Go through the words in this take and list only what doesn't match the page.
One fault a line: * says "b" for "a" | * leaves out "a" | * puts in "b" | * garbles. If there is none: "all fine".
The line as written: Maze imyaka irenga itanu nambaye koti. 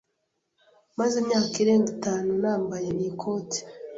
* puts in "iyi"